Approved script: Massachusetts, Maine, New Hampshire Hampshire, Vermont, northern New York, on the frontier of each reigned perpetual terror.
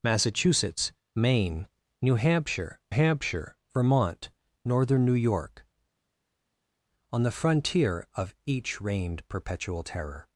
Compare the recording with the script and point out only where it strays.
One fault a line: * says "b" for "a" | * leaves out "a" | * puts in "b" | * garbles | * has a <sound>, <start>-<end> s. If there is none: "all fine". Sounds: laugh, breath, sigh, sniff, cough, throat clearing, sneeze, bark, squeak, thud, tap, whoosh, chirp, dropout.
all fine